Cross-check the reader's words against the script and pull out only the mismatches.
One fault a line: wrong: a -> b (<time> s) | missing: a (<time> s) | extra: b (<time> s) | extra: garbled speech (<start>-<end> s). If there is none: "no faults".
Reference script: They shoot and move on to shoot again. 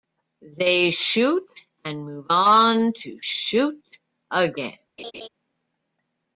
no faults